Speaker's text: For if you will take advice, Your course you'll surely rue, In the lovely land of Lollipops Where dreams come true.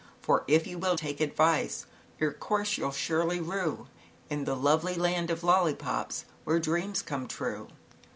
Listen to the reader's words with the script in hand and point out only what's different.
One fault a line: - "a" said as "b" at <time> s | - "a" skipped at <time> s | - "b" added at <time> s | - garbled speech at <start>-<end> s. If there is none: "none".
none